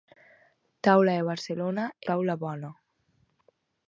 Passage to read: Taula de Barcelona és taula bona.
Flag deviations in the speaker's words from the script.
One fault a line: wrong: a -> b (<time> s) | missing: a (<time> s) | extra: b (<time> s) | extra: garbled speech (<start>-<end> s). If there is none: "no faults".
missing: és (1.9 s)